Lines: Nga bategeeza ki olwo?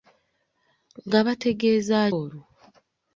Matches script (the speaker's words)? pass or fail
fail